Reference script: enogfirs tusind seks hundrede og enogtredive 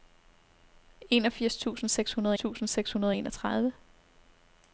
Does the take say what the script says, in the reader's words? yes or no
no